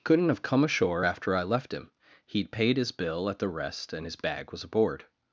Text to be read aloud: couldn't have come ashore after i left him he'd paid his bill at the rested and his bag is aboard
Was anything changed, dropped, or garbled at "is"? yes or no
yes